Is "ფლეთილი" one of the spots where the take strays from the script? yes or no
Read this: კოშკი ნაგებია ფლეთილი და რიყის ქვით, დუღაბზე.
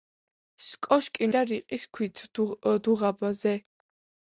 yes